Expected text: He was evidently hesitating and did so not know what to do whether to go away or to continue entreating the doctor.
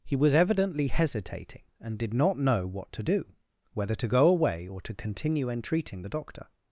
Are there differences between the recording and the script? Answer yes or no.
yes